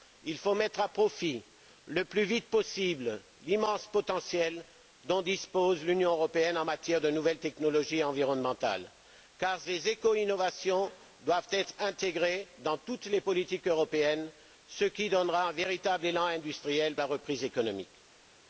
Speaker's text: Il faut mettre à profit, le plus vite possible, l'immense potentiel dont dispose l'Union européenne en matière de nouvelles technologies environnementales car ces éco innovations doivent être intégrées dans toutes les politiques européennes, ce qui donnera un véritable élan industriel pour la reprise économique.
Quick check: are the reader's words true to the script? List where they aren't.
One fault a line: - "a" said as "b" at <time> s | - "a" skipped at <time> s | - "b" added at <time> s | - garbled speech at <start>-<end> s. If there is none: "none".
- "pour" skipped at 17.0 s